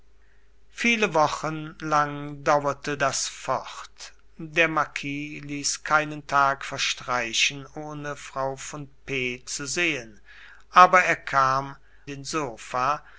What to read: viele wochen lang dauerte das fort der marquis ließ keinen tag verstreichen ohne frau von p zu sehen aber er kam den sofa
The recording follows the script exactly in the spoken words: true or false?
true